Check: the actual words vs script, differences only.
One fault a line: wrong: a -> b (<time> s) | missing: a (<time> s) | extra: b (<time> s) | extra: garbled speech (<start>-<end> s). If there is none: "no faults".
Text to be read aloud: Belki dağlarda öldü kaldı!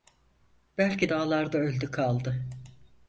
no faults